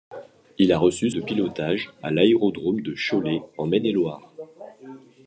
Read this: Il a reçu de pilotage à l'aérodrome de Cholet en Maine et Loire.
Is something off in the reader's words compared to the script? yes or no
no